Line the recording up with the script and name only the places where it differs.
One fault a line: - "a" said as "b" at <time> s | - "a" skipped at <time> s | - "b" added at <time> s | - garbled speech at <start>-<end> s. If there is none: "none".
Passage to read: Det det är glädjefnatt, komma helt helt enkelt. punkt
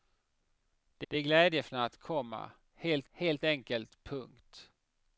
none